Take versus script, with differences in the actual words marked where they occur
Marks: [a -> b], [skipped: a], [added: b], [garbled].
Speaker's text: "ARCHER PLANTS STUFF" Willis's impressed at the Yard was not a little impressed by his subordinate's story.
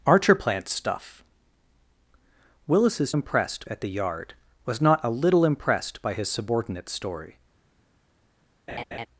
"ARCHER PLANTS STUFF" Willis's impressed at the Yard was not a little impressed by his subordinate's story.